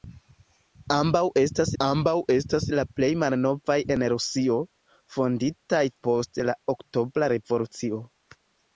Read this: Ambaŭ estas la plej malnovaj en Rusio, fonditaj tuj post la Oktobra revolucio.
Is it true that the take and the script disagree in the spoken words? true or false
true